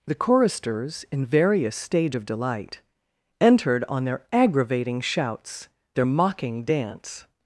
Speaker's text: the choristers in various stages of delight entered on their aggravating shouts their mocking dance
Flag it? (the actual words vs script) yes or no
yes